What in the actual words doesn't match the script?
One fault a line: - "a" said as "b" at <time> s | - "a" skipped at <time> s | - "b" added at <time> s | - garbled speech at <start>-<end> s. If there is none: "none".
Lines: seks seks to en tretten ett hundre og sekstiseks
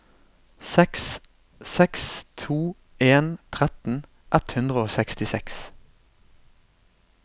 none